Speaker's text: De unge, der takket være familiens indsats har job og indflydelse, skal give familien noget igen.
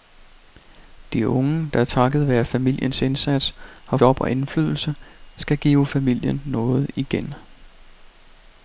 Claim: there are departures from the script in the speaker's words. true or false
false